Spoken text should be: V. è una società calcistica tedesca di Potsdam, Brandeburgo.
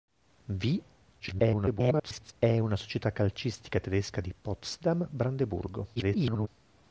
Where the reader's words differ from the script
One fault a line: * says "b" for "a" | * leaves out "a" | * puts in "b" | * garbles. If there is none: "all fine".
* garbles
* garbles